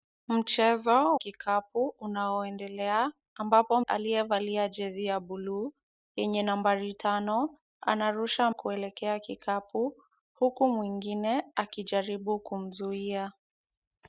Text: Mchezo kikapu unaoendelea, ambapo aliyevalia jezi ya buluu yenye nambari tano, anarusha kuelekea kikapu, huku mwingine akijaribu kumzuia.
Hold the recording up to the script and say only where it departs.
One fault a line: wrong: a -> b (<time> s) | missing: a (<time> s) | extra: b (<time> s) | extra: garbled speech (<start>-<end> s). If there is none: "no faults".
no faults